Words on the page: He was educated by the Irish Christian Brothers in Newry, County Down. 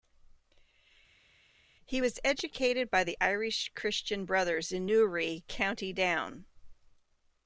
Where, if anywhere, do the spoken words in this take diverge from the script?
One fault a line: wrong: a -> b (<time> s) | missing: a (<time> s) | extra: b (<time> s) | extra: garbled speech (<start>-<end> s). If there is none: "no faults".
no faults